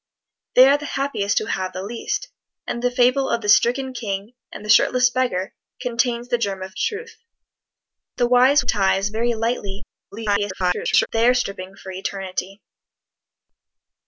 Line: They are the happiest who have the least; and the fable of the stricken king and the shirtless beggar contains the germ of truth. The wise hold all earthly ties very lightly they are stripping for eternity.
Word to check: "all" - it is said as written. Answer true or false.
false